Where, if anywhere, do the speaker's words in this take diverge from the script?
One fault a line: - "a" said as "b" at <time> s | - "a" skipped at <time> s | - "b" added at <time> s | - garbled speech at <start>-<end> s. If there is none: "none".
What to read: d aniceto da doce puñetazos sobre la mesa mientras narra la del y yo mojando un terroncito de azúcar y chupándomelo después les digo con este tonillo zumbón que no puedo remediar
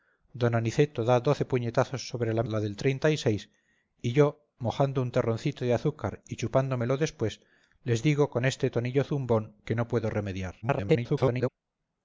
- "mesa mientras narra" skipped at 2.5 s
- garbled speech at 10.6-11.5 s